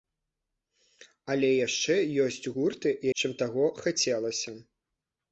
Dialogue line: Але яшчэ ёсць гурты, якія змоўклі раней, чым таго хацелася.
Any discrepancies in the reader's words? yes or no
yes